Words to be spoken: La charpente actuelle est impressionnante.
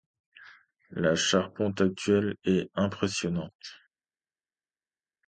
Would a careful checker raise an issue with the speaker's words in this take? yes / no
no